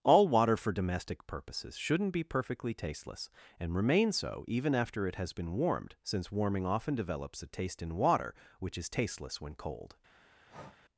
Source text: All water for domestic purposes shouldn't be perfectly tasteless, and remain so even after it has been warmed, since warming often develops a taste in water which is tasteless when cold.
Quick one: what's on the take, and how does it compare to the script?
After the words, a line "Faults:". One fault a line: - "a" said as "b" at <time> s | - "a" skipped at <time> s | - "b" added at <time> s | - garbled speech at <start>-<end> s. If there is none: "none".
All water for domestic purposes shouldn't be perfectly tasteless, and remain so even after it has been warmed, since warming often develops a taste in water which is tasteless when cold.
Faults:
none